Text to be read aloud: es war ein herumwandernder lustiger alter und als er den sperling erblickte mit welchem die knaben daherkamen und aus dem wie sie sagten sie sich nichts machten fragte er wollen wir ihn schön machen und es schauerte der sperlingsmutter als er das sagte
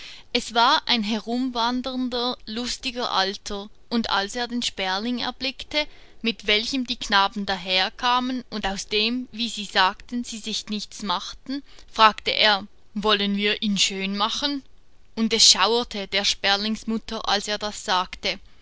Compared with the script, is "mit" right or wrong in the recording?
right